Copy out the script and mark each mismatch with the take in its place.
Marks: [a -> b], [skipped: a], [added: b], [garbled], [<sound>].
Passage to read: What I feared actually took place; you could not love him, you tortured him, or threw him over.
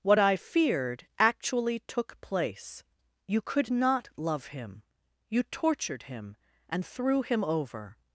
What I feared actually took place; you could not love him, you tortured him, [or -> and] threw him over.